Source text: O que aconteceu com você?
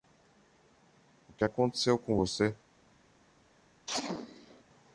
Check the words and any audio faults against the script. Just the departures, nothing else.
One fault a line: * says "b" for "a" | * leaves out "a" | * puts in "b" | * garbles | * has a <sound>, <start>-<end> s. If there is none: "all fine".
* has a sneeze, 3.9-4.6 s